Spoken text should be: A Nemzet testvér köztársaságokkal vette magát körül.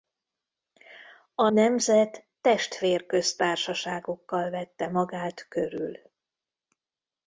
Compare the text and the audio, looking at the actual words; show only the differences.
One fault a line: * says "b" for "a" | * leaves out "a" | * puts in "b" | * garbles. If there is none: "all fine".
all fine